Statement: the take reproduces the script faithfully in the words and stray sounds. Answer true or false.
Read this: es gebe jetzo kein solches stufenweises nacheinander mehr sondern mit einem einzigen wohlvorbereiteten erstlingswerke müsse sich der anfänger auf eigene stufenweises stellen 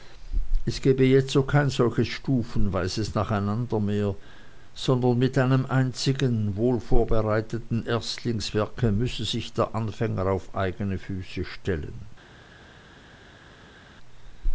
false